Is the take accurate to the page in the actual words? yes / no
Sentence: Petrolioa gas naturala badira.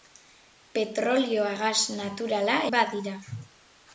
yes